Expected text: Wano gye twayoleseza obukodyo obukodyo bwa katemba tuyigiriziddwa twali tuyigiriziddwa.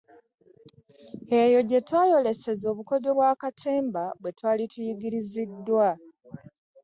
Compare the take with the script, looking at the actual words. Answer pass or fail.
fail